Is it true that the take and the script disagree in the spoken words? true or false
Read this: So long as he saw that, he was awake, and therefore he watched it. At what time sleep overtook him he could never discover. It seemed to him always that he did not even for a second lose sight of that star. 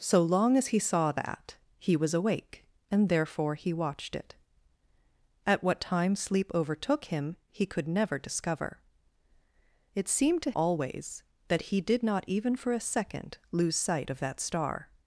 true